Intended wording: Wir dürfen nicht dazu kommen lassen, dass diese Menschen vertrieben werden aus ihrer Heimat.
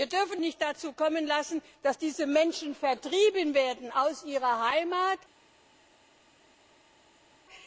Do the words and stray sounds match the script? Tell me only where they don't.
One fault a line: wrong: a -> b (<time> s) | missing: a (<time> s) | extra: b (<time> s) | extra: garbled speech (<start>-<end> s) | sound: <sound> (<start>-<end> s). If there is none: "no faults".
no faults